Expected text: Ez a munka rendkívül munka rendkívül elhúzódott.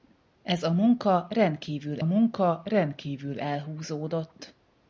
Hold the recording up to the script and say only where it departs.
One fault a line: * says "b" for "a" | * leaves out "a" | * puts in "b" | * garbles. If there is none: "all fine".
all fine